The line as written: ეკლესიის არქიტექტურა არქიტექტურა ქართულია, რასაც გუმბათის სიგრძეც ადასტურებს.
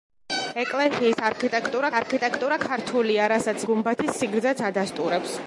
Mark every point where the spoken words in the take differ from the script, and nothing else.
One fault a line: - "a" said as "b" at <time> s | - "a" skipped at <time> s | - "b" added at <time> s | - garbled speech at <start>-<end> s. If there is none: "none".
none